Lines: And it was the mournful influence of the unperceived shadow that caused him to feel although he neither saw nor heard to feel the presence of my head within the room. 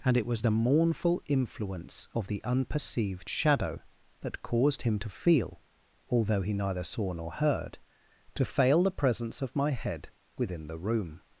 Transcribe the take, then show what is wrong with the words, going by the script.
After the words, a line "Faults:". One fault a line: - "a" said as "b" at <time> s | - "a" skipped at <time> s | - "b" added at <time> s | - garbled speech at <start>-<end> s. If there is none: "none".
And it was the mournful influence of the unperceived shadow that caused him to feel although he neither saw nor heard to fail the presence of my head within the room.
Faults:
- "feel" said as "fail" at 8.4 s